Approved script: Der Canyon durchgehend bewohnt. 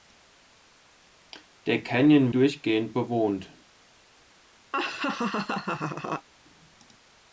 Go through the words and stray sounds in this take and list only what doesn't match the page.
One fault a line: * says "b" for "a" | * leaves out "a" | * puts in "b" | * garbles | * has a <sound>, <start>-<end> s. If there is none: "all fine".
* has a laugh, 4.7-6.3 s